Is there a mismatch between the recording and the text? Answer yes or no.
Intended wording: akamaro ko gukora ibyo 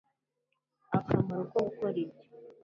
no